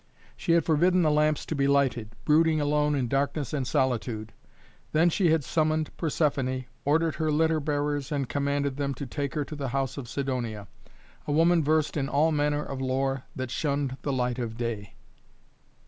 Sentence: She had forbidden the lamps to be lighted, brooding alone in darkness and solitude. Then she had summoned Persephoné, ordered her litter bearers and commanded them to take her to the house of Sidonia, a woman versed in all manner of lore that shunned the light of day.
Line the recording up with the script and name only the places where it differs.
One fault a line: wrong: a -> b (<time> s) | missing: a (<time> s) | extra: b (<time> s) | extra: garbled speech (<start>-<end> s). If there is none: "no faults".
no faults